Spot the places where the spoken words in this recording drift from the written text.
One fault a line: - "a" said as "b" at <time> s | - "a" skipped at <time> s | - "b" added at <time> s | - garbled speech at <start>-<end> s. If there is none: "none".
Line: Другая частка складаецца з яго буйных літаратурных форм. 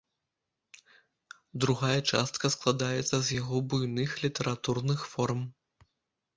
none